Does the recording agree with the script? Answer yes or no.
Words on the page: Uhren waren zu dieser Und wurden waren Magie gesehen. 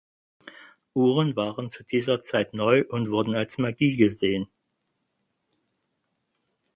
no